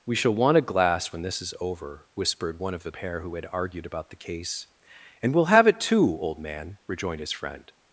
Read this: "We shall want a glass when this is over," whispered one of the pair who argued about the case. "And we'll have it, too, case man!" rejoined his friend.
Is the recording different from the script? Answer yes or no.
yes